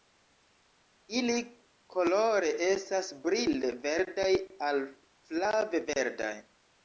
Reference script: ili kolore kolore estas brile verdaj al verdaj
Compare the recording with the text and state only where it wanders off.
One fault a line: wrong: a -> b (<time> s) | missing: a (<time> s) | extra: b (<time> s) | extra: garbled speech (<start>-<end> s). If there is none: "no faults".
missing: kolore (2.5 s)
extra: flave (5.3 s)